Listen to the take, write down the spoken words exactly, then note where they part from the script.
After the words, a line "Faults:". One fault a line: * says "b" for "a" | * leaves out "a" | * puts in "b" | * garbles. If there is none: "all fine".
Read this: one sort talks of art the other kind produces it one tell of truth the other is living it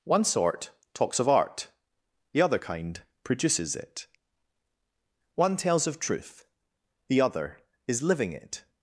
one sort talks of art the other kind produces it one tells of truth the other is living it
Faults:
* says "tells" for "tell"